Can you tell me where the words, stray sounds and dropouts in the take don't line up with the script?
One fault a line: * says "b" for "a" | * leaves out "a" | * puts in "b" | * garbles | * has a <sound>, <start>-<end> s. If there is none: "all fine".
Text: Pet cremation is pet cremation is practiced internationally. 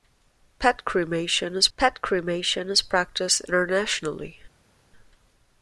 all fine